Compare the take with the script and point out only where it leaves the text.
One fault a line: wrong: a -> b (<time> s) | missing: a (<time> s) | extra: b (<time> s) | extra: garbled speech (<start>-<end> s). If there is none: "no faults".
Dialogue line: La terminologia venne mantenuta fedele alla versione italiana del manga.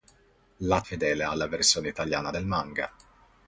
missing: terminologia venne mantenuta (0.8 s)